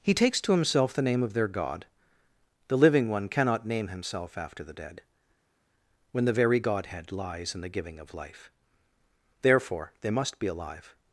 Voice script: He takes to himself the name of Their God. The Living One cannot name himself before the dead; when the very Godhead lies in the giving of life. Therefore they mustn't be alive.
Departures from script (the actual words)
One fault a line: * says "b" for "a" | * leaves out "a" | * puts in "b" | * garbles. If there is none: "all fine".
* says "after" for "before"
* says "must" for "mustn't"